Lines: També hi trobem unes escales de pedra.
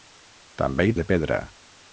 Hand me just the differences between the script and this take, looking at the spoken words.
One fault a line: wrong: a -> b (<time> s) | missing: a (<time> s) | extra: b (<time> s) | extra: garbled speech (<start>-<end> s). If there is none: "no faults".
missing: trobem unes escales (0.9 s)